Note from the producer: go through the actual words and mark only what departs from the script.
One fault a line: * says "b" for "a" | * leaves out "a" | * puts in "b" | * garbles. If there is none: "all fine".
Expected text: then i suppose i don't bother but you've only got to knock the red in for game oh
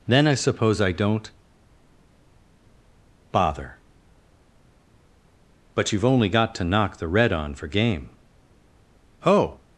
* says "on" for "in"